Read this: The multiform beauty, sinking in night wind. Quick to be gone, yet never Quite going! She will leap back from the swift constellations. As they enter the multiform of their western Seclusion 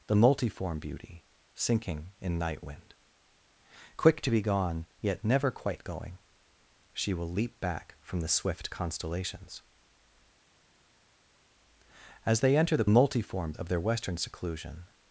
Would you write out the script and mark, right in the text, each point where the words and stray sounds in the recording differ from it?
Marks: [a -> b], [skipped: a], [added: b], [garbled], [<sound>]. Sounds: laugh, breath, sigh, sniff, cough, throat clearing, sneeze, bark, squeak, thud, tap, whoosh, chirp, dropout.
The multiform beauty, sinking in night wind. Quick to be gone, yet never Quite going! She will leap back from the swift constellations. As they enter the multiform of their western Seclusion